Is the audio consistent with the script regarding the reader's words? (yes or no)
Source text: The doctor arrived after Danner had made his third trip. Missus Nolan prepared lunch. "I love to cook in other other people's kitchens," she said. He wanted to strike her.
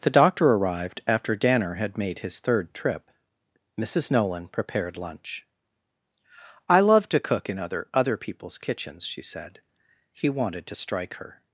yes